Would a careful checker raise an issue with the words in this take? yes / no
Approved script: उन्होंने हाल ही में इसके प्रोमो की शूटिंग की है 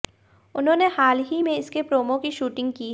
no